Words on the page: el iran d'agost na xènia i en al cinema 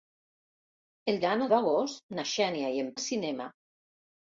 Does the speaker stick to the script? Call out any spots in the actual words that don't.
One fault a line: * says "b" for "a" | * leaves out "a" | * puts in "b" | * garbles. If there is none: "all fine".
all fine